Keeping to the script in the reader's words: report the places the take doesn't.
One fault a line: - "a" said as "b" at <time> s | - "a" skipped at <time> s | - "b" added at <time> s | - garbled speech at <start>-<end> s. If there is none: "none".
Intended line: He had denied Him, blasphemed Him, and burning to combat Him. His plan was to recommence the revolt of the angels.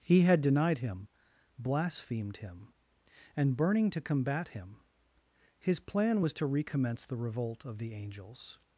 none